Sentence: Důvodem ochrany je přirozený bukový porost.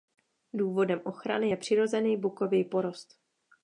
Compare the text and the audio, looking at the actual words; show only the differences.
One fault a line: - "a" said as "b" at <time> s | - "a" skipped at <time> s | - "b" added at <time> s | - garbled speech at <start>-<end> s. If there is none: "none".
none